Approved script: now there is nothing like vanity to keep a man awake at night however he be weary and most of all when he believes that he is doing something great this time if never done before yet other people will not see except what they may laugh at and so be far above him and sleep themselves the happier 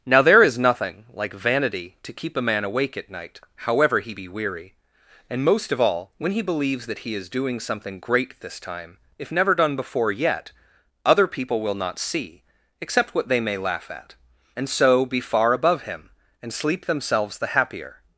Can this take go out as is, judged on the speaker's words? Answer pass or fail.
pass